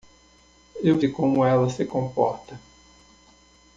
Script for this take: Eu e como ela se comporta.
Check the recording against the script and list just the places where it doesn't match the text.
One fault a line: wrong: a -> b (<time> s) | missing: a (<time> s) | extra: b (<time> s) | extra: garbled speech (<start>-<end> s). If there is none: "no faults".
no faults